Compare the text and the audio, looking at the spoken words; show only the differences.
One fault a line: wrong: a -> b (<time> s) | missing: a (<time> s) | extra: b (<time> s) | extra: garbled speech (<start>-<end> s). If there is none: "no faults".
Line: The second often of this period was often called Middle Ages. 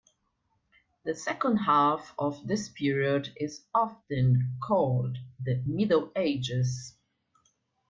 wrong: often -> half (1.6 s)
wrong: was -> is (3.4 s)
extra: the (5.4 s)